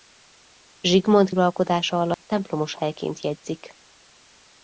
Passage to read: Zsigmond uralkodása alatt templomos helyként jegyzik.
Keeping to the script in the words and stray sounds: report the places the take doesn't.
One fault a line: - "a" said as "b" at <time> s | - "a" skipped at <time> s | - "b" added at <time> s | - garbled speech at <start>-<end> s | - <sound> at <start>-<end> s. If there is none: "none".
- dropout at 2.1-2.2 s